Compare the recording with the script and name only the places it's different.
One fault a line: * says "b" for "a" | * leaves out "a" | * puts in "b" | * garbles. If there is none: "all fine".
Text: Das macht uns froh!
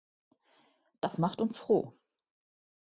all fine